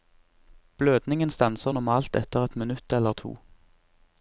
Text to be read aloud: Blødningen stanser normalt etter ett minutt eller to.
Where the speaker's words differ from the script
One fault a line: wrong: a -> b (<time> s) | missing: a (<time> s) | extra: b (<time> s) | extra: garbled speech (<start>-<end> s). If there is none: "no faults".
no faults